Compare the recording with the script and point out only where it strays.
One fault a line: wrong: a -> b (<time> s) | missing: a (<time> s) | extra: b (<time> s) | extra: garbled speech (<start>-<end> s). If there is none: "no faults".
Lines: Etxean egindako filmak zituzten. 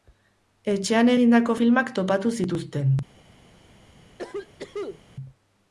extra: topatu (2.0 s)